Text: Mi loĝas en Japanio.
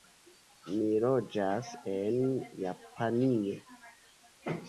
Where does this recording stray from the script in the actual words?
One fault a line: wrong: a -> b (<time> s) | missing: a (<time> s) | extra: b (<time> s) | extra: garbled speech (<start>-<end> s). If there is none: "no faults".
no faults